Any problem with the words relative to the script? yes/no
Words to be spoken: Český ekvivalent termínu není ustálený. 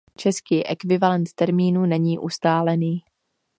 no